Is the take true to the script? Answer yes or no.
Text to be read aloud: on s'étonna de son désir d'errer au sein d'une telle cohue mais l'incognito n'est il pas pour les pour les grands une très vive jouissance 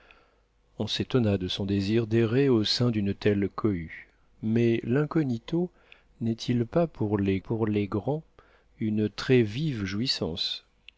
yes